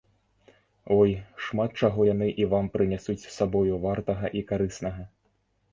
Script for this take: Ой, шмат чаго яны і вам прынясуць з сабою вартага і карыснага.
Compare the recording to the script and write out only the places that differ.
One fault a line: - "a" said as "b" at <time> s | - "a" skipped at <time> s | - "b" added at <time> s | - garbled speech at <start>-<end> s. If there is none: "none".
none